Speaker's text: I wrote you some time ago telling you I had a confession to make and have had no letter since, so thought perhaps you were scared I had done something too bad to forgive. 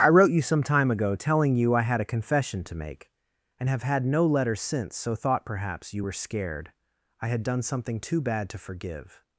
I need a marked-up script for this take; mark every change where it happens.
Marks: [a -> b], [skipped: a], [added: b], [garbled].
I wrote you some time ago telling you I had a confession to make and have had no letter since, so thought perhaps you were scared I had done something too bad to forgive.